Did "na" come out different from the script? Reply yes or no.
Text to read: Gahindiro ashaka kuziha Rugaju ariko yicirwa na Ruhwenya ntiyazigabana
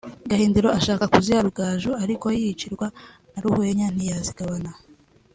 no